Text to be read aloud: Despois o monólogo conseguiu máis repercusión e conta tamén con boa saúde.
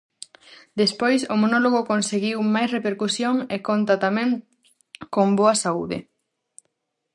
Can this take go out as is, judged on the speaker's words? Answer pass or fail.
pass